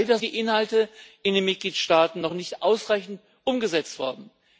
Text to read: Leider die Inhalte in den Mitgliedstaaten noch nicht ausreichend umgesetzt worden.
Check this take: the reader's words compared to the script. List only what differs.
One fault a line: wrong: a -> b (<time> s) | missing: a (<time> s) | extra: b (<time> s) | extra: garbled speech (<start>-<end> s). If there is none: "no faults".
no faults